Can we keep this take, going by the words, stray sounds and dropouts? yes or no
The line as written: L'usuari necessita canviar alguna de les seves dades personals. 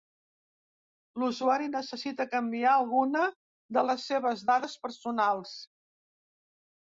yes